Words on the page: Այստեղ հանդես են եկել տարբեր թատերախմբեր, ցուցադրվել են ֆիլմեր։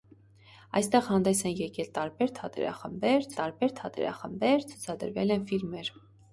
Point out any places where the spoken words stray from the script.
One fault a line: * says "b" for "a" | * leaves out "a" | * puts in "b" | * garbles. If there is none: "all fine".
* puts in "տարբեր թատերախմբեր"